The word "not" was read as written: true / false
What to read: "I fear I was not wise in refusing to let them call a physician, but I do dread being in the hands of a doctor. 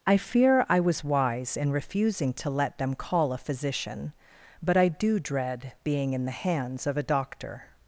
false